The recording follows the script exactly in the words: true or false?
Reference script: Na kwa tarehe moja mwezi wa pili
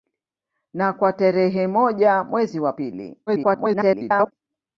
false